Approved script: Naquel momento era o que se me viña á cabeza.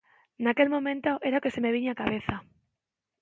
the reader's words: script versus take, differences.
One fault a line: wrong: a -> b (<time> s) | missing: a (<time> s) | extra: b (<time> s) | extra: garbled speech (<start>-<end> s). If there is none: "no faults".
no faults